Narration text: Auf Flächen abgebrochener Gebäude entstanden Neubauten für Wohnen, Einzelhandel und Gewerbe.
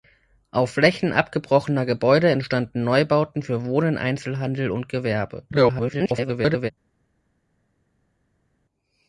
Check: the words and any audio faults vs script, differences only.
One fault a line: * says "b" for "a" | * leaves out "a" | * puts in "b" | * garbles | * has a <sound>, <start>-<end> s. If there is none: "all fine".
* garbles